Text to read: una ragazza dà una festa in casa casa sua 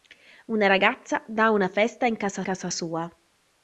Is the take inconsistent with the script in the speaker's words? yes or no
no